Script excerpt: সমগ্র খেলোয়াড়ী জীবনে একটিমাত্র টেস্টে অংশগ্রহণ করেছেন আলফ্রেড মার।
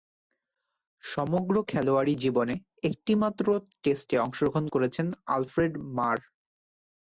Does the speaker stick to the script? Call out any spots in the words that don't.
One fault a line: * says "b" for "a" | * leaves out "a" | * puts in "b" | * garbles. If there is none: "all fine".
all fine